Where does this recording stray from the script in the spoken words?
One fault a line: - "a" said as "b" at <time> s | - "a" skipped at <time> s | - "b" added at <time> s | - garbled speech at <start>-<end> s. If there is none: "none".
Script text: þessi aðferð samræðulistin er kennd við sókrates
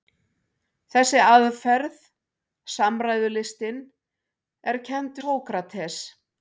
- "við" skipped at 5.2 s